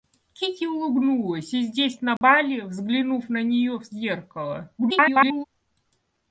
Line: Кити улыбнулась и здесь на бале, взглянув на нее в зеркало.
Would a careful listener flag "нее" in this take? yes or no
no